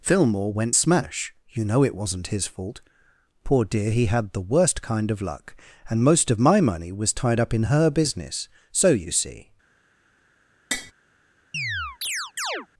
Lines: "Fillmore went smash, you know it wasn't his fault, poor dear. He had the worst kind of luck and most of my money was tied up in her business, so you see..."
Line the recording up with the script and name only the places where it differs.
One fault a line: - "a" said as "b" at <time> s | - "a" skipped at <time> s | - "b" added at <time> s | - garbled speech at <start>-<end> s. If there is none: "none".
none